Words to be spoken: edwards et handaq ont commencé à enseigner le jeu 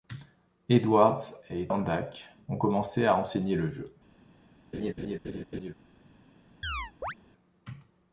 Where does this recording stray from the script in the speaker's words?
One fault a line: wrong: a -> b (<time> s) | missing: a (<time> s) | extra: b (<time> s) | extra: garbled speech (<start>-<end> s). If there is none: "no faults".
no faults